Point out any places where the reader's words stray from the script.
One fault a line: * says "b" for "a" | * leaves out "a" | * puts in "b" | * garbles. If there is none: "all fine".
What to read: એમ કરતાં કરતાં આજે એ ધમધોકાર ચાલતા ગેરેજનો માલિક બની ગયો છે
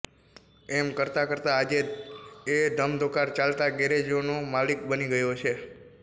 all fine